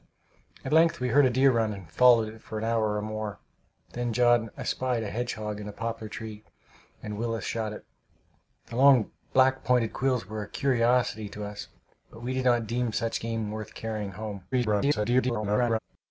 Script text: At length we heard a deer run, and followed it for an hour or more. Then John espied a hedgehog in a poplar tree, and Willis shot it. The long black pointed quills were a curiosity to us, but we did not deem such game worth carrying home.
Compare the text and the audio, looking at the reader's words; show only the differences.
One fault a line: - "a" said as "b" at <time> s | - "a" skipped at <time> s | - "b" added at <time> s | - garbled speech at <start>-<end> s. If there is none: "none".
- garbled speech at 14.5-15.8 s